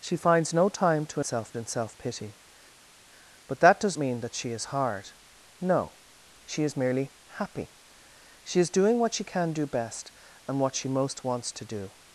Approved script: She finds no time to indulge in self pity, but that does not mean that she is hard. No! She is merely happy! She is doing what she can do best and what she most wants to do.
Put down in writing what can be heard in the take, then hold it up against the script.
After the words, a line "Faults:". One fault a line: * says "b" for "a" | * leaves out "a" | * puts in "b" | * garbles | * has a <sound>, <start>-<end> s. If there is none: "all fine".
She finds no time to self in self pity, but that does mean that she is hard. No! She is merely happy! She is doing what she can do best and what she most wants to do.
Faults:
* says "self" for "indulge"
* leaves out "not"